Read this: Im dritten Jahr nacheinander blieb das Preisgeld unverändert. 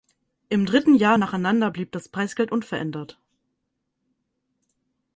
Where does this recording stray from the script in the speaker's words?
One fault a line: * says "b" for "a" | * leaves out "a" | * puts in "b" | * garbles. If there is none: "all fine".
all fine